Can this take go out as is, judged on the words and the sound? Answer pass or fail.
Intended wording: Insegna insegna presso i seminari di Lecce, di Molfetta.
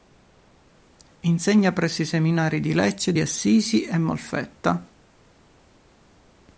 fail